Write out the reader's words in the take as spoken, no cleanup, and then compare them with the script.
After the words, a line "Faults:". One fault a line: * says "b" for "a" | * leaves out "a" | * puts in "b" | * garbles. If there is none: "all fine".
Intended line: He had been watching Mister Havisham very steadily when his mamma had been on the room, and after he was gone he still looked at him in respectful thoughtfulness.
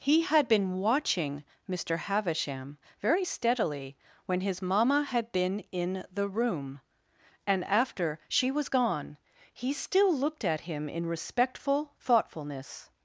He had been watching Mister Havisham very steadily when his mamma had been in the room, and after she was gone he still looked at him in respectful thoughtfulness.
Faults:
* says "in" for "on"
* says "she" for "he"